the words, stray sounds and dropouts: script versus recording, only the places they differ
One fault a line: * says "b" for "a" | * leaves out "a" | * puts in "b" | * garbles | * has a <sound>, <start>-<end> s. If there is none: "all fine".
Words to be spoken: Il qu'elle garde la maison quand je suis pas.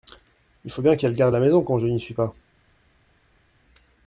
* puts in "faut bien"
* puts in "n'y"